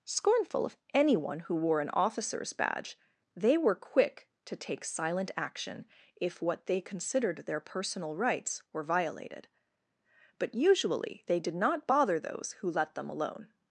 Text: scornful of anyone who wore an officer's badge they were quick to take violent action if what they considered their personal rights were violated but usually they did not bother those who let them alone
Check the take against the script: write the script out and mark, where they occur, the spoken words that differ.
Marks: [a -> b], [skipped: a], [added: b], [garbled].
scornful of anyone who wore an officer's badge they were quick to take [violent -> silent] action if what they considered their personal rights were violated but usually they did not bother those who let them alone